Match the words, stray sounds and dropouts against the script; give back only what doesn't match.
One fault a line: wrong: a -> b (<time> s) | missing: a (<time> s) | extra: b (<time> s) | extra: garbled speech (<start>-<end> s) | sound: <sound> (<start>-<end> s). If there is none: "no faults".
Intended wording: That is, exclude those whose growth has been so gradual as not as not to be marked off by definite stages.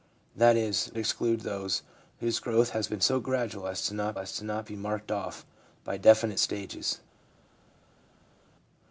no faults